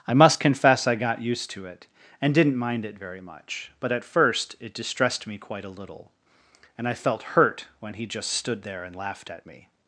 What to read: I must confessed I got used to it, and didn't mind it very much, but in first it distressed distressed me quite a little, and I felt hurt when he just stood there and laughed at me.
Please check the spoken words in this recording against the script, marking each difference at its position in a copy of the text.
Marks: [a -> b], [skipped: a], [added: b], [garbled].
I must [confessed -> confess] I got used to it, and didn't mind it very much, but [in -> at] first it distressed [skipped: distressed] me quite a little, and I felt hurt when he just stood there and laughed at me.